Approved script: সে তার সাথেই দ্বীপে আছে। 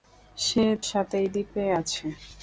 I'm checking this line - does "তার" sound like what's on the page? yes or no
no